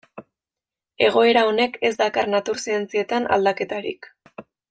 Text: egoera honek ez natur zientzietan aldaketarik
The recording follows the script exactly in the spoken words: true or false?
false